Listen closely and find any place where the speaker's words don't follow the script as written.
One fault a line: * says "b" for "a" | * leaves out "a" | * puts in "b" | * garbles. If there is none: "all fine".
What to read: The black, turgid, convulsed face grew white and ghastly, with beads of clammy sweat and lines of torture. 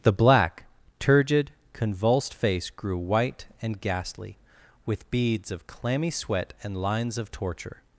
all fine